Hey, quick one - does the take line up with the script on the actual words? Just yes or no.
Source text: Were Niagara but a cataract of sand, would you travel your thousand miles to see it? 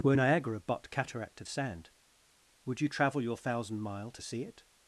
no